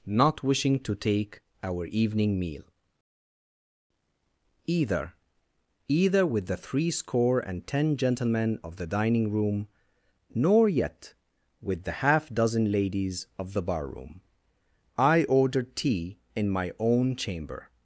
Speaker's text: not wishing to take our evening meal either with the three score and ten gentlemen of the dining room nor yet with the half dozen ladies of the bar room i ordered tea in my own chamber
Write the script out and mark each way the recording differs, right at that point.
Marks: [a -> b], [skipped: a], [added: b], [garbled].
not wishing to take our evening meal either [added: either] with the three score and ten gentlemen of the dining room nor yet with the half dozen ladies of the bar room i ordered tea in my own chamber